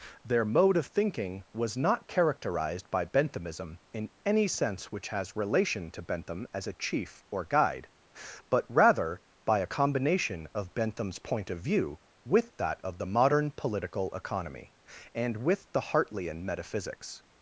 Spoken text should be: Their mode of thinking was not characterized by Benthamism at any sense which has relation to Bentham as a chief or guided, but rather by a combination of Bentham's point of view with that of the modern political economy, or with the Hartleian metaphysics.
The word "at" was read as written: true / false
false